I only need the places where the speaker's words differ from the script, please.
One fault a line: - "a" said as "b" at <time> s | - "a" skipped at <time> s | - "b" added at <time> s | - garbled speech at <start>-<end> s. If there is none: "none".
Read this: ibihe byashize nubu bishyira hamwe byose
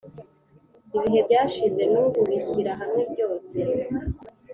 none